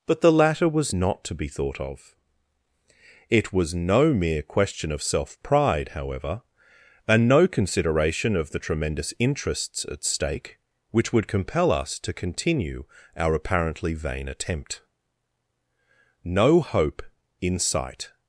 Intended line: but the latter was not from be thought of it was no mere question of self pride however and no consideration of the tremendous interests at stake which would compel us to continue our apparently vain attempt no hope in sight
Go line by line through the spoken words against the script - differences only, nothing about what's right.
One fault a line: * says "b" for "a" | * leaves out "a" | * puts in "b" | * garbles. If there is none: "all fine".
* says "to" for "from"